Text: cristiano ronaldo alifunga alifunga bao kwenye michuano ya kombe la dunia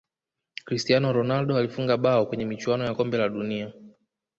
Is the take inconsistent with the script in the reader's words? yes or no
yes